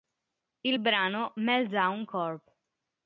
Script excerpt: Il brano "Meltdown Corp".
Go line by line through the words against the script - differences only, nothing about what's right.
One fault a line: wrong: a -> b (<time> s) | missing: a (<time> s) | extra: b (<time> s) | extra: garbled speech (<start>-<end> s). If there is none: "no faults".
no faults